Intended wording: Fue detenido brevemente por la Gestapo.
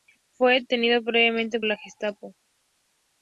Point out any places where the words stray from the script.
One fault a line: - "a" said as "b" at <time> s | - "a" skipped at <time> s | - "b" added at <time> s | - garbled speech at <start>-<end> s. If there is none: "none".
- "por" skipped at 1.6 s